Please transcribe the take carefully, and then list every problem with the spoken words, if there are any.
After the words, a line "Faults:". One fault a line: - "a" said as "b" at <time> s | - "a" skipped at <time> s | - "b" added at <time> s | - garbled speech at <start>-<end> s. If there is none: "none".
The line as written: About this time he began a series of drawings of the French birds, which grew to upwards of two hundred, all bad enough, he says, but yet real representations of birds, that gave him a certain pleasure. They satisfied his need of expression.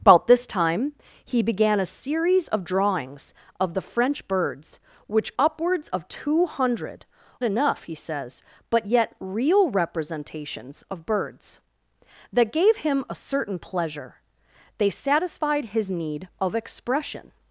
About this time he began a series of drawings of the French birds, which upwards of two hundred, enough, he says, but yet real representations of birds, that gave him a certain pleasure. They satisfied his need of expression.
Faults:
- "grew to" skipped at 5.3 s
- "all bad" skipped at 7.0 s